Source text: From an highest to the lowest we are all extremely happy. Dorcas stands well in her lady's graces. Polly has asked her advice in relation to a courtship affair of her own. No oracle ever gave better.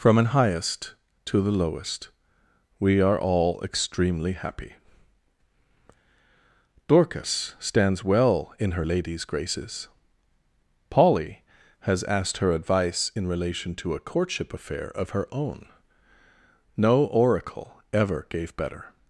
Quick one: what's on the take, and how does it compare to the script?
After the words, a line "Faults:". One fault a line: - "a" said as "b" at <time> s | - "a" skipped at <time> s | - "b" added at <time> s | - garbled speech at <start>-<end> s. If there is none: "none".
From an highest to the lowest we are all extremely happy. Dorcas stands well in her lady's graces. Polly has asked her advice in relation to a courtship affair of her own. No oracle ever gave better.
Faults:
none